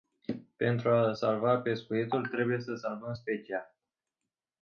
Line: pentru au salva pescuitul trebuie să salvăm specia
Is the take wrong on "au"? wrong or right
wrong